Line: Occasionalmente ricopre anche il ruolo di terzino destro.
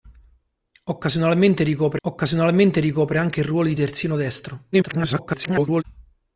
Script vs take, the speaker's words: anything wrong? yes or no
yes